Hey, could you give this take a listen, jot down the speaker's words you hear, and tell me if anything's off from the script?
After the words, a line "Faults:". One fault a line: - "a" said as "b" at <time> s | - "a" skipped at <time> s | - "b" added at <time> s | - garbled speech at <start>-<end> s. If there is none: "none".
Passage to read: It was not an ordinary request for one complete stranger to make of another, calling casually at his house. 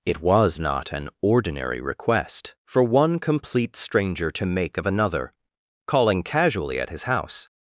It was not an ordinary request for one complete stranger to make of another, calling casually at his house.
Faults:
none